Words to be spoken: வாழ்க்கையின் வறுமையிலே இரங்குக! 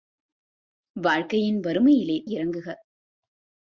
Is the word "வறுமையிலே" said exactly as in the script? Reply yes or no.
yes